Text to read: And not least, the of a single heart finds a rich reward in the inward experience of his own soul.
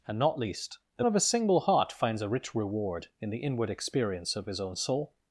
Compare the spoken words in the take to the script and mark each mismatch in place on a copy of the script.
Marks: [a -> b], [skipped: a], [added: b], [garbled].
And not least, the of a single heart finds a rich reward in the inward experience of his own soul.